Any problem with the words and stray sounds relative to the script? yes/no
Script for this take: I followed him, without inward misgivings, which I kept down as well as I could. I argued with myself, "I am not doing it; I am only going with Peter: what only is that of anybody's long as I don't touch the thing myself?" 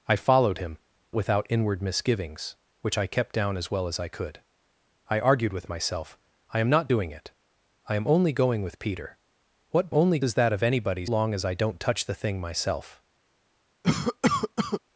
yes